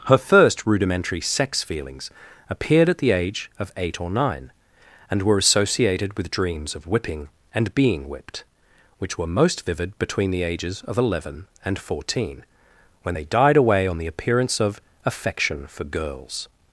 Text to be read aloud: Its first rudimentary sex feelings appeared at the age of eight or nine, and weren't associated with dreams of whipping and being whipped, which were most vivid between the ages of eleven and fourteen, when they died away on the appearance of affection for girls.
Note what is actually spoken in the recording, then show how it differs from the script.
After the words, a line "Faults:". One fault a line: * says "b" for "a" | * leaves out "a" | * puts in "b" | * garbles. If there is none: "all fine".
Her first rudimentary sex feelings appeared at the age of eight or nine, and were associated with dreams of whipping and being whipped, which were most vivid between the ages of eleven and fourteen, when they died away on the appearance of affection for girls.
Faults:
* says "Her" for "Its"
* says "were" for "weren't"